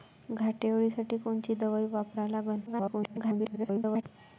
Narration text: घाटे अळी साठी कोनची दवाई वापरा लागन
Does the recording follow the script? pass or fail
fail